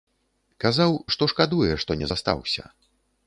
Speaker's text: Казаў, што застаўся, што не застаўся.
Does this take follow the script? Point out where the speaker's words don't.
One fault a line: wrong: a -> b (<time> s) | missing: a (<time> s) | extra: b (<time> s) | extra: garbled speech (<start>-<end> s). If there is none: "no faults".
wrong: застаўся -> шкадуе (1.3 s)